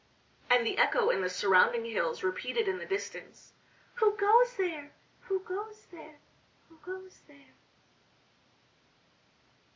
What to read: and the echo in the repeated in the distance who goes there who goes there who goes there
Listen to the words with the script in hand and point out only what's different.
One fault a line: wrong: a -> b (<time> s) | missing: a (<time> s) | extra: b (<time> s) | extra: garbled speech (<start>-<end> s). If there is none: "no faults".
extra: surrounding hills (1.3 s)